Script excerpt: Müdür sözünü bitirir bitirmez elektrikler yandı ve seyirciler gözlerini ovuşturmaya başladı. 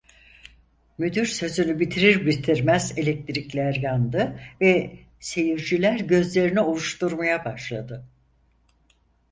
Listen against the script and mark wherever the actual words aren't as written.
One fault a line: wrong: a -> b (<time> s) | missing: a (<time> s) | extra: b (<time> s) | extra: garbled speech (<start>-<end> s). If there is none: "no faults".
no faults